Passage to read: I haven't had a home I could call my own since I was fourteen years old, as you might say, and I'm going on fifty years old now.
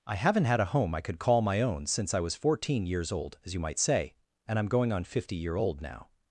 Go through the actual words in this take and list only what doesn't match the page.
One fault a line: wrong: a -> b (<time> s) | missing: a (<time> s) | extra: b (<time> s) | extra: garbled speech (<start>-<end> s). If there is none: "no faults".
wrong: years -> year (5.3 s)